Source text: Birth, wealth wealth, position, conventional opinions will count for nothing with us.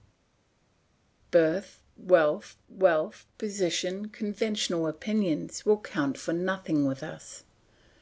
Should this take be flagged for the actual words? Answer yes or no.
no